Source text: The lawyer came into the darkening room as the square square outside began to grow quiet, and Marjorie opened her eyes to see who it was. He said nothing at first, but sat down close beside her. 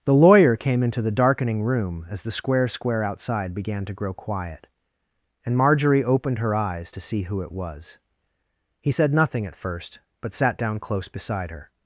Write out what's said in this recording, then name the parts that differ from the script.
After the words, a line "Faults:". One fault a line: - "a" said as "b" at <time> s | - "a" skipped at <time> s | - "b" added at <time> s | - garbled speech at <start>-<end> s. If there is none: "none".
The lawyer came into the darkening room as the square square outside began to grow quiet, and Marjorie opened her eyes to see who it was. He said nothing at first, but sat down close beside her.
Faults:
none